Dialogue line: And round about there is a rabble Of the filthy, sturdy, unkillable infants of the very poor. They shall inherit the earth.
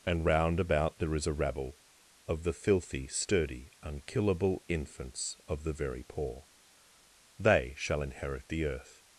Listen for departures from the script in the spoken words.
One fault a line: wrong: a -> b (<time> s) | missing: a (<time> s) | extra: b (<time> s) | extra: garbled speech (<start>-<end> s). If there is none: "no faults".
no faults